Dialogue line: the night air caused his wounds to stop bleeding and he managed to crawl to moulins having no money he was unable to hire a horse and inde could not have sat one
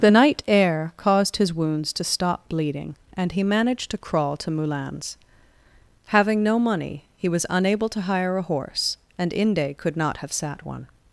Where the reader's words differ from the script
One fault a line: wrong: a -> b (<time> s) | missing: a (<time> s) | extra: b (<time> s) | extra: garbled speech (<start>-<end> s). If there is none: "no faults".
no faults